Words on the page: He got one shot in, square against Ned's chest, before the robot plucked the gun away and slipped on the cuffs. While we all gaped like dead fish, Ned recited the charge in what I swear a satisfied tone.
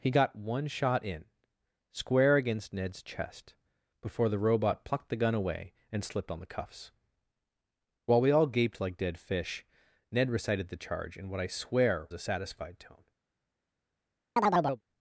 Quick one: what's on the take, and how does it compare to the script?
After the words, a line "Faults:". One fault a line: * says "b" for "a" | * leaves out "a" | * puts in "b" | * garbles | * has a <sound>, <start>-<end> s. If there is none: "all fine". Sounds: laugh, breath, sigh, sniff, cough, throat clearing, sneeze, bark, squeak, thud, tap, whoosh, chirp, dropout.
He got one shot in, square against Ned's chest, before the robot plucked the gun away and slipped on the cuffs. While we all gaped like dead fish, Ned recited the charge in what I swear a satisfied tone.
Faults:
* has a chirp, 14.4-14.8 s